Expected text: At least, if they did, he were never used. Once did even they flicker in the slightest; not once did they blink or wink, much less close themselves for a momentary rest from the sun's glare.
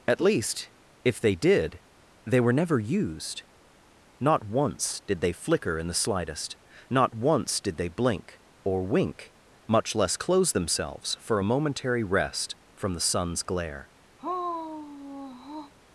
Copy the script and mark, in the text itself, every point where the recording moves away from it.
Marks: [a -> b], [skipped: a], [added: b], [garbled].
At least, if they did, [he -> they] were never used. [added: Not] Once did [skipped: even] they flicker in the slightest; not once did they blink or wink, much less close themselves for a momentary rest from the sun's glare.